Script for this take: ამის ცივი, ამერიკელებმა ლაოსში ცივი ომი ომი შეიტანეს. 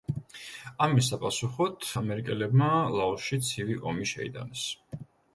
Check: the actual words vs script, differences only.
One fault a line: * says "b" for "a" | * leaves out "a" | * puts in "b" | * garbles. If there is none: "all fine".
* says "საპასუხოდ" for "ცივი"
* leaves out "ომი"